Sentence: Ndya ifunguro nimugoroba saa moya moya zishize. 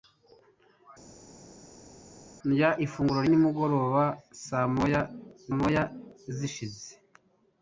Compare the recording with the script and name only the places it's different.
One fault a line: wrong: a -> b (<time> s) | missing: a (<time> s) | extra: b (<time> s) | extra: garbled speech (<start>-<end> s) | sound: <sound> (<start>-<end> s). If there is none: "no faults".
no faults